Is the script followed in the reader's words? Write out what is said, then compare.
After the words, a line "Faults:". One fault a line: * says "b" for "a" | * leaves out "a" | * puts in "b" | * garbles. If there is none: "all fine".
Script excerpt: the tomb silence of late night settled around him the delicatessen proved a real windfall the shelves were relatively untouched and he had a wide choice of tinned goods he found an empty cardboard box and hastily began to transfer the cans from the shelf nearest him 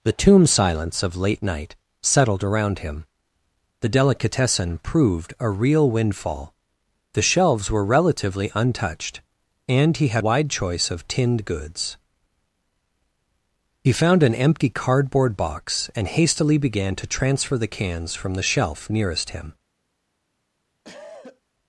the tomb silence of late night settled around him the delicatessen proved a real windfall the shelves were relatively untouched and he had wide choice of tinned goods he found an empty cardboard box and hastily began to transfer the cans from the shelf nearest him
Faults:
* leaves out "a"